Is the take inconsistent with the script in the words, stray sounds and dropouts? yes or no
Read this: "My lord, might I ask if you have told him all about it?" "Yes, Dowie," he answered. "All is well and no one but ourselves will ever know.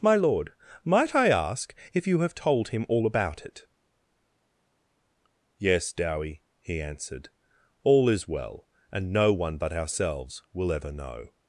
no